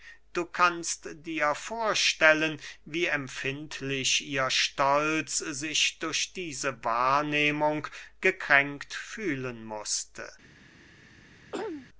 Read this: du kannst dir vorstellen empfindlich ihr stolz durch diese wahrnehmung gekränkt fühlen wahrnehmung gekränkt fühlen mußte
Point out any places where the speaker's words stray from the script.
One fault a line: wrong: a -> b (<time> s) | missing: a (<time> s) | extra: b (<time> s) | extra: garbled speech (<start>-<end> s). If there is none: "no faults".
extra: wie (2.9 s)
extra: sich (5.4 s)
missing: wahrnehmung gekränkt fühlen (9.7 s)